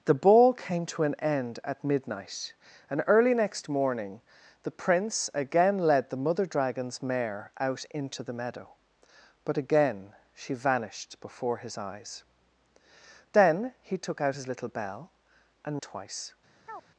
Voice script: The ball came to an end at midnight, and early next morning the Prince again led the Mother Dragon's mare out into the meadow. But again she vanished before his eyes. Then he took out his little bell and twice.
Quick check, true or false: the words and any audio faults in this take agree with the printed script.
false